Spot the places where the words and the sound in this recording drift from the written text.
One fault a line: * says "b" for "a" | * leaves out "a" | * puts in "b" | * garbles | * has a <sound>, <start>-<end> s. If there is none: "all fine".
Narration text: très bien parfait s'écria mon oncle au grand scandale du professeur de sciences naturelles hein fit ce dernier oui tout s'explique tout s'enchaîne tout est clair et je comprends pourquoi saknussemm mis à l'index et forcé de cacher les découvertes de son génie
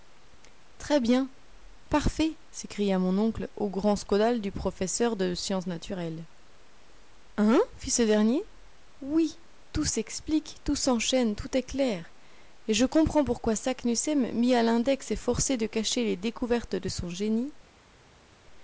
all fine